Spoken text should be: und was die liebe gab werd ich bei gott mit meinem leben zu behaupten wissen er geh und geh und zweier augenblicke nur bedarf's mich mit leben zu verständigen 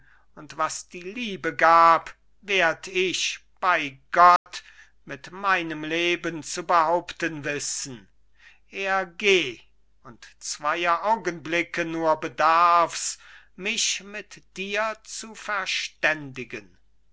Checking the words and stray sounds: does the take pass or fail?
fail